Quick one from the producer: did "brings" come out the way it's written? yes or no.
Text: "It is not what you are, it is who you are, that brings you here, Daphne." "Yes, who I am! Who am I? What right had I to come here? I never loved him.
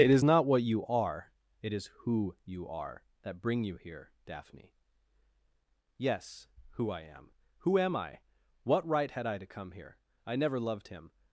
no